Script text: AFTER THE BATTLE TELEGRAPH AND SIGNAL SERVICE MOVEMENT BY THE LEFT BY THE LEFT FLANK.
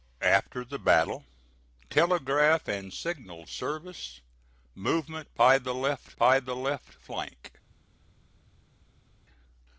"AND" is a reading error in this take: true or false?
false